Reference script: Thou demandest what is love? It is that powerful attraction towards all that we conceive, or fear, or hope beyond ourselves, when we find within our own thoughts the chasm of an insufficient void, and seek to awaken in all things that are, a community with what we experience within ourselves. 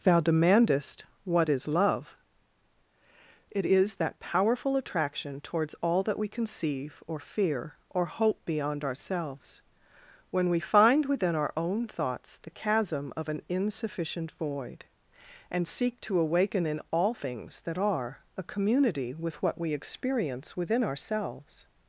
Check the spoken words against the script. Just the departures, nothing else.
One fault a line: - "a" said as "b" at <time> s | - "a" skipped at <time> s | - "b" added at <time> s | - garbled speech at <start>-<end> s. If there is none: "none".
none